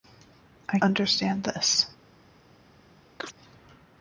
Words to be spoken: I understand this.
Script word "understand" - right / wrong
right